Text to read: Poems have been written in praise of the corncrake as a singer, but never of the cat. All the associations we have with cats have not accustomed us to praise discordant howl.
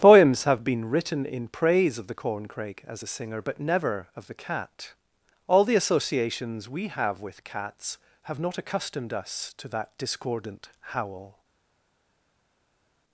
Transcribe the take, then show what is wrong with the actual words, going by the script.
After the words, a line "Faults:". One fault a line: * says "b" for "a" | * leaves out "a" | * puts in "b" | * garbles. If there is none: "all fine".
Poems have been written in praise of the corncrake as a singer, but never of the cat. All the associations we have with cats have not accustomed us to that discordant howl.
Faults:
* says "that" for "praise"